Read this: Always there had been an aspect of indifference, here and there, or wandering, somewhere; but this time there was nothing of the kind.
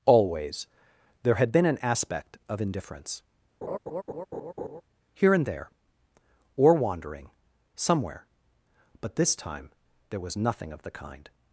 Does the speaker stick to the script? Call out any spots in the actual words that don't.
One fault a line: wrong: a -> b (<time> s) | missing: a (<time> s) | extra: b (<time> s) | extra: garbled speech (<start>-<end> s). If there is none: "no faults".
no faults